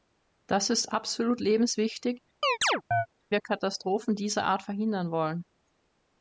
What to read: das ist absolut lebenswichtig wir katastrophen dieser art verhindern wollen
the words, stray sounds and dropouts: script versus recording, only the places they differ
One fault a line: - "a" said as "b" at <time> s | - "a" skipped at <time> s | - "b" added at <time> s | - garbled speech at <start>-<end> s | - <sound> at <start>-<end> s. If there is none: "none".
- chirp at 2.4-3.1 s